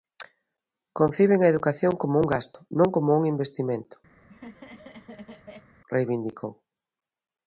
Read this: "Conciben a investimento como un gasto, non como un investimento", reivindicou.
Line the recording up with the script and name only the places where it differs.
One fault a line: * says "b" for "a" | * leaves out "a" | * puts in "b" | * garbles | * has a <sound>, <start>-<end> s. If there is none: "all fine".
* says "educación" for "investimento"
* has a laugh, 4.2-5.7 s